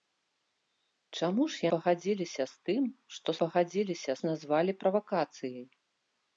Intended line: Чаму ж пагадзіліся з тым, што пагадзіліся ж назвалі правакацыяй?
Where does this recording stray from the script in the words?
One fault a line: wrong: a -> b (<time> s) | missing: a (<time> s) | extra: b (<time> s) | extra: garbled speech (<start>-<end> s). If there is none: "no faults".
no faults